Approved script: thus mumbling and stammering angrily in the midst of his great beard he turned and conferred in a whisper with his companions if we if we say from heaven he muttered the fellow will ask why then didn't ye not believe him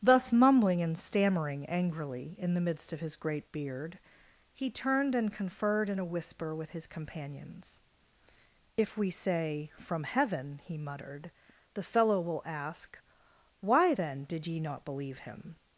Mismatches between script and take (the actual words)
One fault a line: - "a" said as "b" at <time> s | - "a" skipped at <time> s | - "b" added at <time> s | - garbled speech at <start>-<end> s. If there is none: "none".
- "if we" skipped at 9.1 s
- "didn't" said as "did" at 14.2 s